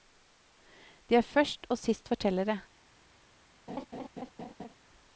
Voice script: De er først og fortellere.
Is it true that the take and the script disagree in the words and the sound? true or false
true